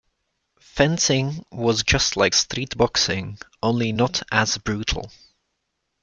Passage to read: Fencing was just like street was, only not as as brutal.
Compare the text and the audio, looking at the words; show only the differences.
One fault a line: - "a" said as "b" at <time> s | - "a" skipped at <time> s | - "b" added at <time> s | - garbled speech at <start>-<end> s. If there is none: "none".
- "was" said as "boxing" at 2.8 s
- "as" skipped at 4.6 s